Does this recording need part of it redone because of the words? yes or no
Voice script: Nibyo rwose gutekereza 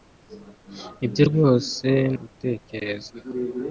no